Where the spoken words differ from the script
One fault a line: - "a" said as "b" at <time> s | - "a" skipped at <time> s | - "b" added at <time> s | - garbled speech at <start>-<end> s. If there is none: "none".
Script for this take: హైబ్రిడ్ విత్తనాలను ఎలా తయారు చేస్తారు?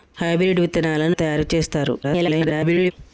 - "ఎలా" skipped at 1.1 s
- garbled speech at 2.0-2.9 s